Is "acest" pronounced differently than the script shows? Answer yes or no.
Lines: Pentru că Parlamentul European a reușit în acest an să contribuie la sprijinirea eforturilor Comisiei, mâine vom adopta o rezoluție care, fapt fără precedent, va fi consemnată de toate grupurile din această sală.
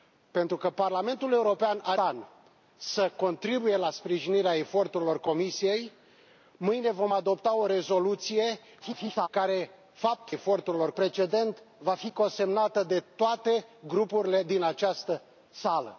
yes